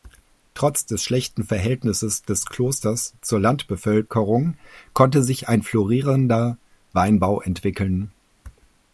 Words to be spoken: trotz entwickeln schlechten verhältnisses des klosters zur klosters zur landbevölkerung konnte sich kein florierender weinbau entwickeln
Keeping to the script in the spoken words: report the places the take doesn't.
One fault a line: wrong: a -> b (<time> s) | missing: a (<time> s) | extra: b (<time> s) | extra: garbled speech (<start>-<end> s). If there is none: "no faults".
wrong: entwickeln -> des (0.9 s)
missing: klosters zur (3.4 s)
wrong: kein -> ein (5.5 s)